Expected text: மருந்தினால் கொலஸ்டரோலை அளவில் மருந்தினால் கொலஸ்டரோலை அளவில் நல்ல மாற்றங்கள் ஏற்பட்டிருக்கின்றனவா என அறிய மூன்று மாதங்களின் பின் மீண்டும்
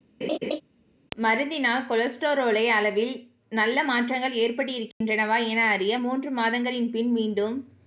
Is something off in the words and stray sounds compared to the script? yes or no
yes